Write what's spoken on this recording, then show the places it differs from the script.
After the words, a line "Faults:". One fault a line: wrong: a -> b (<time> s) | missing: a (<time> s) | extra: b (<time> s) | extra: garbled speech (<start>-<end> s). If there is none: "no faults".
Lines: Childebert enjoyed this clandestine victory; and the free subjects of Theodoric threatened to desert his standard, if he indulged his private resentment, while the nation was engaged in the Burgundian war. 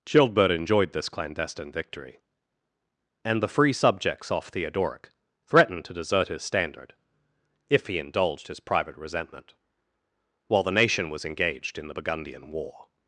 Childebert enjoyed this clandestine victory; and the free subjects off Theodoric threatened to desert his standard, if he indulged his private resentment, while the nation was engaged in the Burgundian war.
Faults:
wrong: of -> off (4.3 s)